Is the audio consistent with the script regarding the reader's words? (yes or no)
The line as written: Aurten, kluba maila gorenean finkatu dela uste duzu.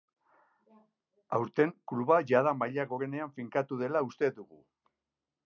no